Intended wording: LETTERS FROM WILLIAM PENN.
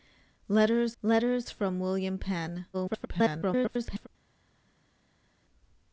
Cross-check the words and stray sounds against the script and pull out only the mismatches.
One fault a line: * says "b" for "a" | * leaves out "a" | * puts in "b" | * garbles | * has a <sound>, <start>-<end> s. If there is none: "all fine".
* puts in "letters"
* garbles